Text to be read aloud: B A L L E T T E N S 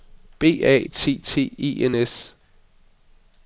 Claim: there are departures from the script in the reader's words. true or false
true